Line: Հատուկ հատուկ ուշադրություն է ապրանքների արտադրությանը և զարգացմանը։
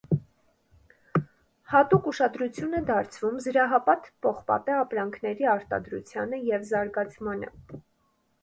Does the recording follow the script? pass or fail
fail